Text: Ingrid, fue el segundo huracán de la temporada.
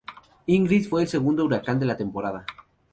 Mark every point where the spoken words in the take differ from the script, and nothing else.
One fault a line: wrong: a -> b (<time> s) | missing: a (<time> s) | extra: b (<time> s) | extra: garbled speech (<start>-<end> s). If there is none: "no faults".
no faults